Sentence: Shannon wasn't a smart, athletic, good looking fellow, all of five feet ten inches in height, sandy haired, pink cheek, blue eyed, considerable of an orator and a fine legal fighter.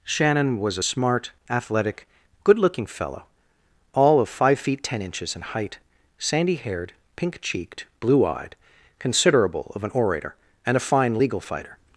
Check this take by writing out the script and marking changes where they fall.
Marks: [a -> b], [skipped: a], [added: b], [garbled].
Shannon [wasn't -> was] a smart, athletic, good looking fellow, all of five feet ten inches in height, sandy haired, pink [cheek, -> cheeked] blue eyed, considerable of an orator and a fine legal fighter.